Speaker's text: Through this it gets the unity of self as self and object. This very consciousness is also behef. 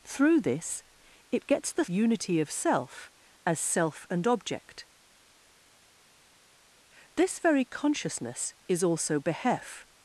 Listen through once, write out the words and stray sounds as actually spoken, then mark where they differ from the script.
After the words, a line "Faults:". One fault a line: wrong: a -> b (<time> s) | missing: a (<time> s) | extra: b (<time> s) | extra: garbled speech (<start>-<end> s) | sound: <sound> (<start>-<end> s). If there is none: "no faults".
Through this it gets the unity of self as self and object. This very consciousness is also behef.
Faults:
no faults